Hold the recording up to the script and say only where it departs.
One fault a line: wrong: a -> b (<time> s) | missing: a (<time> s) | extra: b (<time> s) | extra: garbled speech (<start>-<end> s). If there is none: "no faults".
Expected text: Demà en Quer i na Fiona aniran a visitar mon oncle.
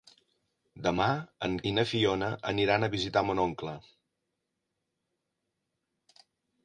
missing: Quer (1.6 s)